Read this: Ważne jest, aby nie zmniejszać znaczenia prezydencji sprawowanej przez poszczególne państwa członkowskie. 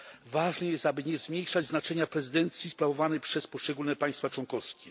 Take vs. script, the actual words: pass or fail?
pass